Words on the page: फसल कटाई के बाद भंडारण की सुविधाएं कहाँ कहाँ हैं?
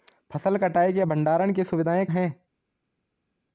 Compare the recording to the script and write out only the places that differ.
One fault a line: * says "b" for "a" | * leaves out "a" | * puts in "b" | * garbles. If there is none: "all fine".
* leaves out "बाद"
* leaves out "कहाँ कहाँ"